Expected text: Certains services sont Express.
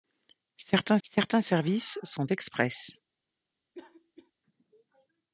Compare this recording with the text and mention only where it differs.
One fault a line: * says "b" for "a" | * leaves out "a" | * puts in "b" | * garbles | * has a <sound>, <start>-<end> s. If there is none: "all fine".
* puts in "certains"
* has a cough, 3.7-4.3 s